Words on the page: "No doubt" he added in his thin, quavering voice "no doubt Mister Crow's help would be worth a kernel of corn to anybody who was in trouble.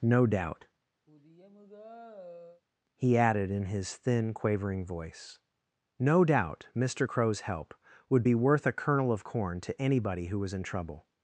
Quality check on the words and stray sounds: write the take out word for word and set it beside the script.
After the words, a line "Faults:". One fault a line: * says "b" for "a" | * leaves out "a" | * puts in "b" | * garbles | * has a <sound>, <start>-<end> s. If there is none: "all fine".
"No doubt" he added in his thin, quavering voice "no doubt Mister Crow's help would be worth a kernel of corn to anybody who was in trouble.
Faults:
* has a sigh, 1.1-2.6 s